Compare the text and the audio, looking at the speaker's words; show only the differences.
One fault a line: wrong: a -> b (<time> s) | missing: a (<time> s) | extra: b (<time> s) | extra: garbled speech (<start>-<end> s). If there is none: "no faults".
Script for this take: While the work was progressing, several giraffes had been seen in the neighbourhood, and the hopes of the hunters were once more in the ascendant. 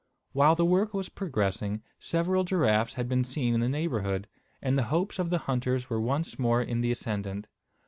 no faults